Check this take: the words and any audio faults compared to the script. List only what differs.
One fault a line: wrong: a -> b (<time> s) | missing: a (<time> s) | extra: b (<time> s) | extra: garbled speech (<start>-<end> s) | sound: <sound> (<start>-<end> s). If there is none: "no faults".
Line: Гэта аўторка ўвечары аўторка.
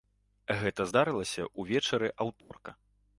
wrong: аўторка -> здарылася (0.9 s)
sound: dropout (2.4-2.5 s)